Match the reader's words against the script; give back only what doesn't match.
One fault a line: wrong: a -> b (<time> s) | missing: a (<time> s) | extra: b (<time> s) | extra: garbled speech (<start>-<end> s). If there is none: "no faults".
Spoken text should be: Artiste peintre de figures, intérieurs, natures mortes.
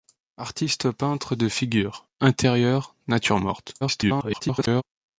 extra: garbled speech (3.8-4.8 s)